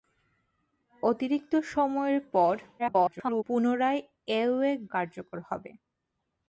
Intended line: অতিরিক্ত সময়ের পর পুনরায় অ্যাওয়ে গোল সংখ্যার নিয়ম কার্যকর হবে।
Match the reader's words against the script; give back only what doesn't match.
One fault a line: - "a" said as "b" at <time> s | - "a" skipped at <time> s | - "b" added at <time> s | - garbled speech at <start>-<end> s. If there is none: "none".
- garbled speech at 2.8-3.4 s
- "গোল সংখ্যার নিয়ম" skipped at 4.7 s